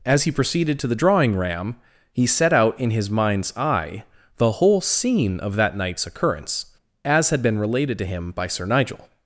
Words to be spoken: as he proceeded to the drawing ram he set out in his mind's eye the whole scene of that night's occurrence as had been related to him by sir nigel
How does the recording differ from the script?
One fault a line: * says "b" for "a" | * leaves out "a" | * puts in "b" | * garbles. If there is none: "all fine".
all fine